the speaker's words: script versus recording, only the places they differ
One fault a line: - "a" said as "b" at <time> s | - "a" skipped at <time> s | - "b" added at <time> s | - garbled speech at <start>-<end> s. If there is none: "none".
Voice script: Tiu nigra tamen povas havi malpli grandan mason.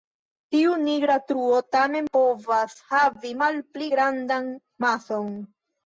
- "truo" added at 1.3 s